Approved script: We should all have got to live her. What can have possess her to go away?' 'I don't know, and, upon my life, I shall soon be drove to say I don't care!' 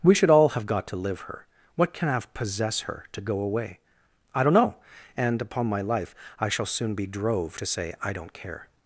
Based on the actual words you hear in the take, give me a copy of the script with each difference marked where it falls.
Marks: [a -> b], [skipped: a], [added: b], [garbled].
We should all have got to live her. What can have possess her to go away?' 'I don't know, and, upon my life, I shall soon be drove to say I don't care!'